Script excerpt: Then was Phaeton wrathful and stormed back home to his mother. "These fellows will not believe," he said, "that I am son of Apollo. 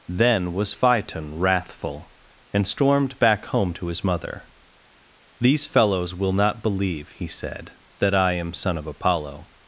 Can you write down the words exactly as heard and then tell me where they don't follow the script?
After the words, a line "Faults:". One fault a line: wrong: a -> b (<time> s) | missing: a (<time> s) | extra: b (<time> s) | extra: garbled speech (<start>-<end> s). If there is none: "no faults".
Then was Phaeton wrathful and stormed back home to his mother. "These fellows will not believe," he said, "that I am son of Apollo.
Faults:
no faults